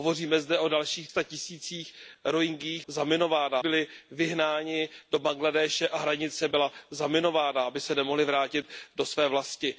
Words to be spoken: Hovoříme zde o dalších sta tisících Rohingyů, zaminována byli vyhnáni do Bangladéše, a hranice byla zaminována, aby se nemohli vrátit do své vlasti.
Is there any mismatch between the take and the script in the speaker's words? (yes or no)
no